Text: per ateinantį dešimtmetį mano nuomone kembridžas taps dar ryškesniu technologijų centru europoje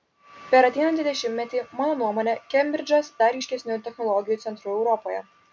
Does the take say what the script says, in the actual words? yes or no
no